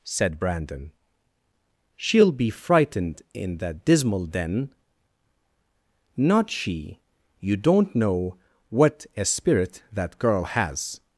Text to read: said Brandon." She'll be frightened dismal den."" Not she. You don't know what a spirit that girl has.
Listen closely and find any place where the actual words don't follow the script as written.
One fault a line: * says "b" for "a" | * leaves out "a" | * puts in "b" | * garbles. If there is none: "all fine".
* puts in "in that"